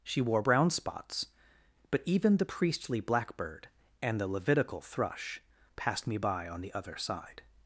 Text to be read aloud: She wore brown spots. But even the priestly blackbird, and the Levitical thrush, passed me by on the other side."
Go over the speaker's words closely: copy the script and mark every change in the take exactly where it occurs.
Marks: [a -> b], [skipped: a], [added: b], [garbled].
She wore brown spots. But even the priestly blackbird, and the Levitical thrush, passed me by on the other side."